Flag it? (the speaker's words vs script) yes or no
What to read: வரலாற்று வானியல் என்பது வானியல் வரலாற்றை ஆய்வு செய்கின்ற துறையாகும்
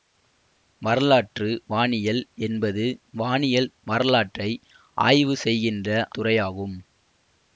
no